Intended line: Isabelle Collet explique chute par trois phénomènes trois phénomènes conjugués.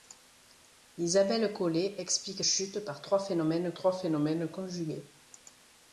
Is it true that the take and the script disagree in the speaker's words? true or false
false